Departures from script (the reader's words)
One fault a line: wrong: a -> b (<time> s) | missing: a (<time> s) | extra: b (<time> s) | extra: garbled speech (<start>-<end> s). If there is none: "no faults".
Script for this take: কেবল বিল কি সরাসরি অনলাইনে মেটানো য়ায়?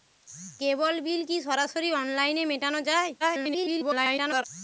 extra: garbled speech (3.2-4.4 s)